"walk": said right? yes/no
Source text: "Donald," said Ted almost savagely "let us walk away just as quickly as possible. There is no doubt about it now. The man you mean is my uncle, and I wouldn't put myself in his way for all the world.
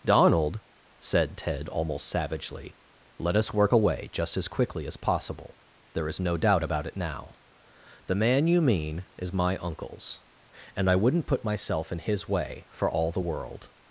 no